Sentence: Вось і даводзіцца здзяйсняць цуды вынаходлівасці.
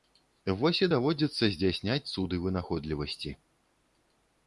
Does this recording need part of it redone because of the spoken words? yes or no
no